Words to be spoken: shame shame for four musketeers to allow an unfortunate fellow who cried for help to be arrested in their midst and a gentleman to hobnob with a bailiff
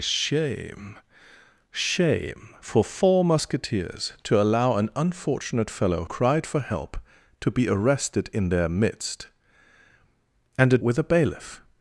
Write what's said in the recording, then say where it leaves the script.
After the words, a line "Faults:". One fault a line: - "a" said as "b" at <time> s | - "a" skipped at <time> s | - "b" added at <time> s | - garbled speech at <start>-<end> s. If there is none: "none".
shame shame for four musketeers to allow an unfortunate fellow cried for help to be arrested in their midst and a with a bailiff
Faults:
- "who" skipped at 6.0 s
- "gentleman to hobnob" skipped at 10.8 s